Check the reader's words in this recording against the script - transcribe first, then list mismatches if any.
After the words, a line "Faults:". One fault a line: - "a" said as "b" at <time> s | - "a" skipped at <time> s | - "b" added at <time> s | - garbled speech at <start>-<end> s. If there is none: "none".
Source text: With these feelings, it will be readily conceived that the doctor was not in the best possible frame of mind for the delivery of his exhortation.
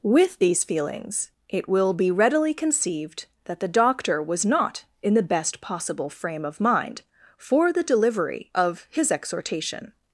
With these feelings, it will be readily conceived that the doctor was not in the best possible frame of mind for the delivery of his exhortation.
Faults:
none